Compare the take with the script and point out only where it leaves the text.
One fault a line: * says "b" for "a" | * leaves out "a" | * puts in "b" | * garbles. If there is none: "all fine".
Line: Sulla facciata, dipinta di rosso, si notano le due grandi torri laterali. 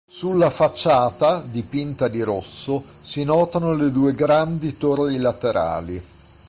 all fine